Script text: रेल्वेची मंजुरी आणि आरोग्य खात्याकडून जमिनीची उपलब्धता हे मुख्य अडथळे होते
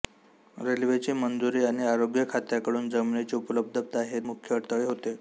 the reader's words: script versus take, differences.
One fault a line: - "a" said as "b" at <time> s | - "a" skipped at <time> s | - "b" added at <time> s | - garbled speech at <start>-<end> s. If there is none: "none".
none